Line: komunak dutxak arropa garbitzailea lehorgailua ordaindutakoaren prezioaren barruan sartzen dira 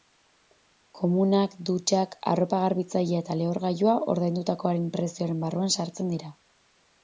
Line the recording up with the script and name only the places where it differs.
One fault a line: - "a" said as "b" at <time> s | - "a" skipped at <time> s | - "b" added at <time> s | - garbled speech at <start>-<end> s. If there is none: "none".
- "eta" added at 3.3 s